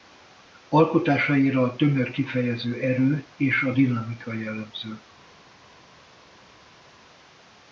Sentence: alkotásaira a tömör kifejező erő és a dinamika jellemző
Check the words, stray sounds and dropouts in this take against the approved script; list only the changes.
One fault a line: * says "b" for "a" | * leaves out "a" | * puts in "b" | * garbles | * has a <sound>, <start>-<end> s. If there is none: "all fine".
all fine